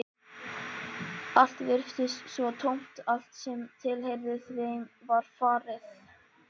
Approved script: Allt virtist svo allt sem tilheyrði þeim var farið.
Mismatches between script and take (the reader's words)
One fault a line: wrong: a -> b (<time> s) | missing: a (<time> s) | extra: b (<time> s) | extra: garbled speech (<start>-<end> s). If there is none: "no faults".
extra: tómt (2.6 s)